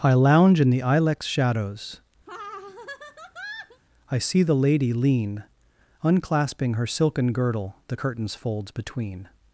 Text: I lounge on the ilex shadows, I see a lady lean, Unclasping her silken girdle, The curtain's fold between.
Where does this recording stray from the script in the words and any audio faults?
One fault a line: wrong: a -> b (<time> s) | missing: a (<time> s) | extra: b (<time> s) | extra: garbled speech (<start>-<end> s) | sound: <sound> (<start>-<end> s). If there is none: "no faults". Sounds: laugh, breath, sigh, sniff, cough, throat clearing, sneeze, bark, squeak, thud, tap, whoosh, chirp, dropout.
wrong: on -> in (0.6 s)
sound: laugh (2.3-3.8 s)
wrong: a -> the (4.4 s)
wrong: fold -> folds (8.3 s)